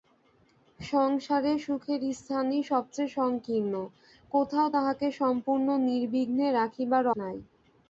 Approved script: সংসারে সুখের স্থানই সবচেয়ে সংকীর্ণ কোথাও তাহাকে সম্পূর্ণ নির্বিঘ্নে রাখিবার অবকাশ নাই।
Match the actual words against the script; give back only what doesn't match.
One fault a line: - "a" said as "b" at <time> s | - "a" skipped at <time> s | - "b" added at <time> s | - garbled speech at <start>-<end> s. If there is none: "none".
- "অবকাশ" skipped at 7.0 s